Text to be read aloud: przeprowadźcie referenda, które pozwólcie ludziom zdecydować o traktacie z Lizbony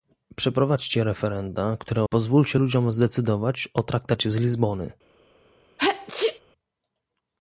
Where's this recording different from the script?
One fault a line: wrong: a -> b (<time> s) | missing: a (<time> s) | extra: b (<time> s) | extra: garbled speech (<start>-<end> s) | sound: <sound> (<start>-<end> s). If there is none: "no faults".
sound: sneeze (5.8-6.4 s)